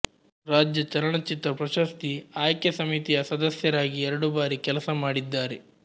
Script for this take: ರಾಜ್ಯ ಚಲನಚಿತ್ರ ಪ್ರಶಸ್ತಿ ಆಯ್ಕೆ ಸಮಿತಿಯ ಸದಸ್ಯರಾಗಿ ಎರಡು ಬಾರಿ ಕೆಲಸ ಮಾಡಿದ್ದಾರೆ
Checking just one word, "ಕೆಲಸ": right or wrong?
right